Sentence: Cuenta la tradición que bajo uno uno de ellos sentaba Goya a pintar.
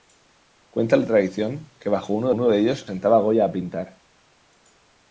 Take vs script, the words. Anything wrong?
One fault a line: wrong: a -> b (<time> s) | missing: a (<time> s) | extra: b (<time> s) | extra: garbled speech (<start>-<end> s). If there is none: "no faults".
no faults